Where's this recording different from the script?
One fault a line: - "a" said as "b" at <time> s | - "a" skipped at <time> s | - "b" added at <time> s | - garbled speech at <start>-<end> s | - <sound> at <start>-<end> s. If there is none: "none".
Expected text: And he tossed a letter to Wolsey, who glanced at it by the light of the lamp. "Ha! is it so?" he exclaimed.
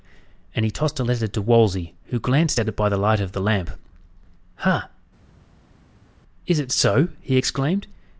none